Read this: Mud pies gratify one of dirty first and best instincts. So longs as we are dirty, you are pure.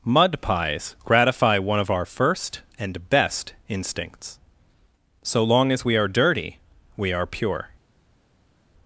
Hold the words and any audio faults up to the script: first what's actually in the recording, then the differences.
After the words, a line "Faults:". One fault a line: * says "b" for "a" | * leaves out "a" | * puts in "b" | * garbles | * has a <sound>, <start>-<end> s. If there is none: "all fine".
Mud pies gratify one of our first and best instincts. So long as we are dirty, we are pure.
Faults:
* says "our" for "dirty"
* says "long" for "longs"
* says "we" for "you"